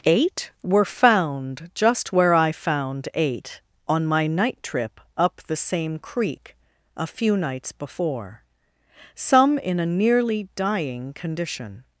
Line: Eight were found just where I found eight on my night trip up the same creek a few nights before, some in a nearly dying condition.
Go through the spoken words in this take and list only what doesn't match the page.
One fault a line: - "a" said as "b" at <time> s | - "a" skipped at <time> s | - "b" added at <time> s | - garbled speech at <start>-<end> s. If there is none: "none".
none